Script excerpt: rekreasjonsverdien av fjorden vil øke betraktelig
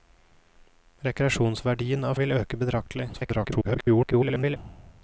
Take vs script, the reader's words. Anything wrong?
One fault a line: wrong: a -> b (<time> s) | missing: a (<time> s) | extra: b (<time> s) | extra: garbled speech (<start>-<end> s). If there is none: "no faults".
missing: fjorden (2.2 s)
extra: garbled speech (3.1-4.6 s)